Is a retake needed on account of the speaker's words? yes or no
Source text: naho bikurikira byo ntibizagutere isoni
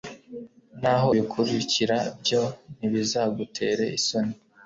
no